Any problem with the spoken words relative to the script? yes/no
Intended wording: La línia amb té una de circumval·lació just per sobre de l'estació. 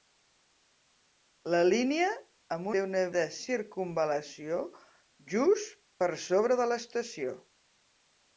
no